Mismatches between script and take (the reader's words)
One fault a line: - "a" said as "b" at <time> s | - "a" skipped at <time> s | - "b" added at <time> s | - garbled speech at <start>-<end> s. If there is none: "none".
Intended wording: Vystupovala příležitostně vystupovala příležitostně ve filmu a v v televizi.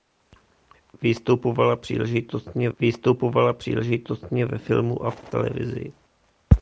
none